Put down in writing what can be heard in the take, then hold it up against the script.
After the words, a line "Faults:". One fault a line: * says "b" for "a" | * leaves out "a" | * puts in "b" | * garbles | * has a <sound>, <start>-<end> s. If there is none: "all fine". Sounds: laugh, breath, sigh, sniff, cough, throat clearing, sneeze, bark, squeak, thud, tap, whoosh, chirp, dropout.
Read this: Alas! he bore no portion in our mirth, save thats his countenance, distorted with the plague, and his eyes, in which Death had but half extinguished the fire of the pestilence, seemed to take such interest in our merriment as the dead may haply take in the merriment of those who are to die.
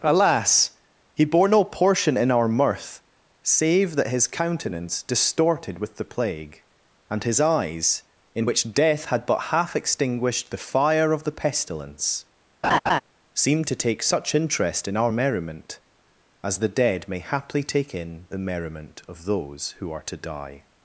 Alas! he bore no portion in our mirth, save that his countenance, distorted with the plague, and his eyes, in which Death had but half extinguished the fire of the pestilence, seemed to take such interest in our merriment as the dead may haply take in the merriment of those who are to die.
Faults:
* says "that" for "thats"
* has a laugh, 12.6-13.0 s